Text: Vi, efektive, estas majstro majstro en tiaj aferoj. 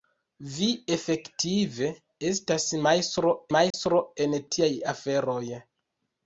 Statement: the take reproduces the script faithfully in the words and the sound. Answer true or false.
false